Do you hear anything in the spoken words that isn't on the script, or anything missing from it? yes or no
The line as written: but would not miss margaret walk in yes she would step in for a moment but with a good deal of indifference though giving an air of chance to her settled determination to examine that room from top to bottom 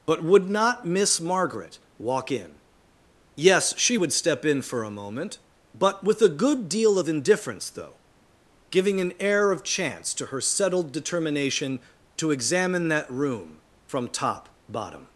yes